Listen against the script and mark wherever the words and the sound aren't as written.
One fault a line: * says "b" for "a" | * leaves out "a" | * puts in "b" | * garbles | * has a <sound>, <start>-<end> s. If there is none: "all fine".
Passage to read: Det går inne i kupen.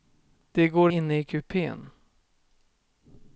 all fine